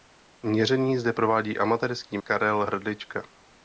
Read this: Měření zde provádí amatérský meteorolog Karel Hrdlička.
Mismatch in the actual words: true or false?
true